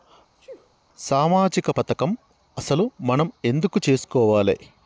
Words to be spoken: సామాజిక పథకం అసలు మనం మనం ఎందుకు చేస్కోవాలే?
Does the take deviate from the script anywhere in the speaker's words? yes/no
yes